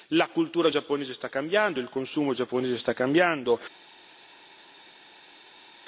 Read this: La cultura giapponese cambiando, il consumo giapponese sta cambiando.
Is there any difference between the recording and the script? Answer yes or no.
yes